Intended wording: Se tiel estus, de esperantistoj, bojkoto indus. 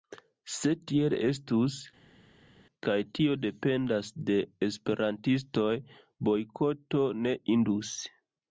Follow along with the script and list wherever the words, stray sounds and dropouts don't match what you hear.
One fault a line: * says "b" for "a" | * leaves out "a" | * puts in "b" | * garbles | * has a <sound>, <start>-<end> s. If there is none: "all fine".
* puts in "kaj tio dependas"
* puts in "ne"